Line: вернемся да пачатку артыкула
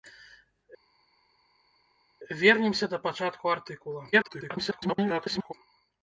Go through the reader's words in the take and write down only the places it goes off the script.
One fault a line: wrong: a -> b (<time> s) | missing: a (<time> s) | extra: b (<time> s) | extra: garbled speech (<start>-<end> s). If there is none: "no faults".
extra: garbled speech (4.1-5.5 s)